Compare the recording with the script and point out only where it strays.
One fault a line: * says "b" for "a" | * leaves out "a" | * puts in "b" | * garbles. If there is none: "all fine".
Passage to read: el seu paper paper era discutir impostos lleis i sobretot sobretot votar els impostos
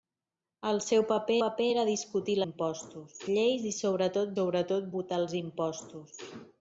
all fine